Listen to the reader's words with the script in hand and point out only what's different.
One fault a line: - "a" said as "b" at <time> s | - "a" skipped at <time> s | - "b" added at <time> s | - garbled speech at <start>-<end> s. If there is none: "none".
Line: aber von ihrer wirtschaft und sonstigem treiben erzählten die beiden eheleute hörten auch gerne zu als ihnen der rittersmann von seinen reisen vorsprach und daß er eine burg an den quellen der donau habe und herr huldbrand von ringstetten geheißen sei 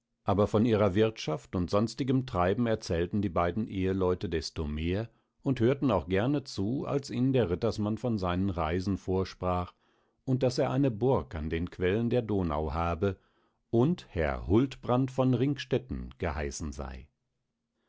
- "desto mehr und" added at 4.3 s